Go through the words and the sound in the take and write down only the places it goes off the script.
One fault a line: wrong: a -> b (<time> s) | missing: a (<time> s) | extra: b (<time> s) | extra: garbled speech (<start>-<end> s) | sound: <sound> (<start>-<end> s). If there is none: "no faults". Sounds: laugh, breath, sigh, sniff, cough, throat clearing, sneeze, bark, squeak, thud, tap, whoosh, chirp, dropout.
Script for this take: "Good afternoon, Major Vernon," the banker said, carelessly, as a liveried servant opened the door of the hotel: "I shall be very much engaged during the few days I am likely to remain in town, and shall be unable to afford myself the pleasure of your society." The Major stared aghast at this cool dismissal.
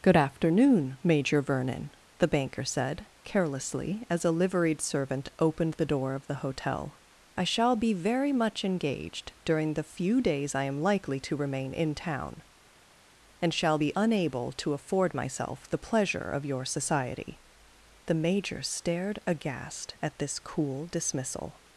no faults